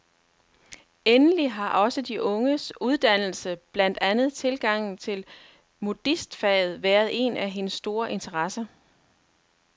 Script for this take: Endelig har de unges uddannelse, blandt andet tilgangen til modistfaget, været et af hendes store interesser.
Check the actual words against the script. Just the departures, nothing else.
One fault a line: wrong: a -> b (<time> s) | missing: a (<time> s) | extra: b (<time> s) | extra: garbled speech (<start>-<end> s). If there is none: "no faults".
extra: også (1.7 s)
wrong: et -> en (7.1 s)